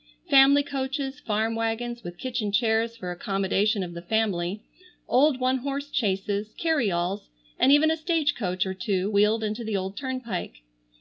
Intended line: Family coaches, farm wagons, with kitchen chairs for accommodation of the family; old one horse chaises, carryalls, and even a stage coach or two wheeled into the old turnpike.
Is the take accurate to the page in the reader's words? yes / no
yes